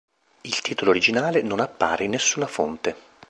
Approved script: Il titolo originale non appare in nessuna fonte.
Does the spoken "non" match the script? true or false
true